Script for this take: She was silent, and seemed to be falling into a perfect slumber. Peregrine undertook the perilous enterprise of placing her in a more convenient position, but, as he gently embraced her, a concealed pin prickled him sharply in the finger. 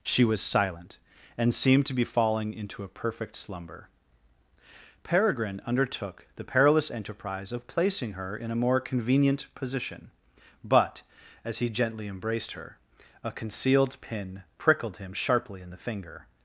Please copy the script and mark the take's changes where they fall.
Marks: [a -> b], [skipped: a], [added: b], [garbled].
She was silent, and seemed to be falling into a perfect slumber. Peregrine undertook the perilous enterprise of placing her in a more convenient position, but, as he gently embraced her, a concealed pin prickled him sharply in the finger.